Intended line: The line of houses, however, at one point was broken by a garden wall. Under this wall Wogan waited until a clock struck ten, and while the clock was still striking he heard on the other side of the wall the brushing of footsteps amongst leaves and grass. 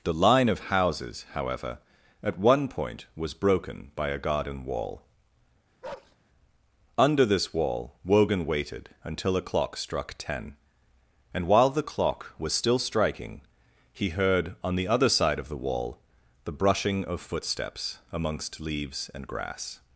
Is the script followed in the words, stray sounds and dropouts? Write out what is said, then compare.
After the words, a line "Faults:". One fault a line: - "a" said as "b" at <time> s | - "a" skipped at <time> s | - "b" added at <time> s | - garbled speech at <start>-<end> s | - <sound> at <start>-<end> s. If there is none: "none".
The line of houses, however, at one point was broken by a garden wall. Under this wall Wogan waited until a clock struck ten, and while the clock was still striking he heard on the other side of the wall the brushing of footsteps amongst leaves and grass.
Faults:
- bark at 5.8-6.2 s